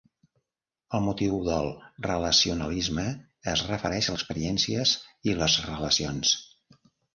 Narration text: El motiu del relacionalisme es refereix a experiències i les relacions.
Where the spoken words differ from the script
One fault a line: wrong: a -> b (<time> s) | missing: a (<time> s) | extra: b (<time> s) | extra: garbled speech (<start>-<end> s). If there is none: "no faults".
no faults